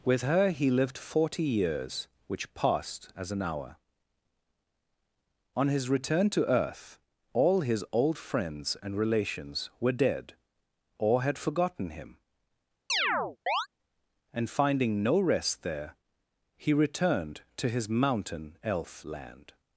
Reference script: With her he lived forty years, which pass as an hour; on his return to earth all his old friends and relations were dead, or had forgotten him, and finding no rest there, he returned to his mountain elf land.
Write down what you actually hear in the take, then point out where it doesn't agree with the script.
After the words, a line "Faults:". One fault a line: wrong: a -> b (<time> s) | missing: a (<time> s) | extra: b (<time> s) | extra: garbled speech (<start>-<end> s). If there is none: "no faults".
With her he lived forty years, which passed as an hour; on his return to earth all his old friends and relations were dead, or had forgotten him, and finding no rest there, he returned to his mountain elf land.
Faults:
wrong: pass -> passed (2.5 s)